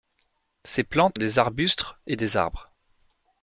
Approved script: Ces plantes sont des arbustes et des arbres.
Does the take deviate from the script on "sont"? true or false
true